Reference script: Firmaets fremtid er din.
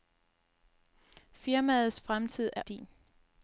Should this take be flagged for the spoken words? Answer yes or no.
no